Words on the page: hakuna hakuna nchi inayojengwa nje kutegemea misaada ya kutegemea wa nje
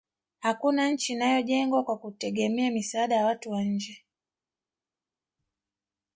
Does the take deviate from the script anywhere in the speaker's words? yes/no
yes